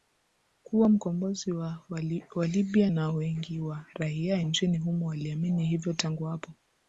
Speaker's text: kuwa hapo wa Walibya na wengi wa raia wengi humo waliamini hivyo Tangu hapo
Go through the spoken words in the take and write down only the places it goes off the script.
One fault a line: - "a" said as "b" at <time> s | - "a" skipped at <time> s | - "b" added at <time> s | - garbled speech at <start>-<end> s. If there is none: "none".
- "hapo" said as "mkombozi" at 0.9 s
- "wengi" said as "nchini" at 4.4 s